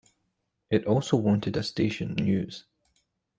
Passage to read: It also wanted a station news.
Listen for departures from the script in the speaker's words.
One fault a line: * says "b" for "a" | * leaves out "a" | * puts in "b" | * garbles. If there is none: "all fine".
all fine